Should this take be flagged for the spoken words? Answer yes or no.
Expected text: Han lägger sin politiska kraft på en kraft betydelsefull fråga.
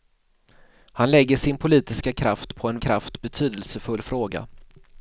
no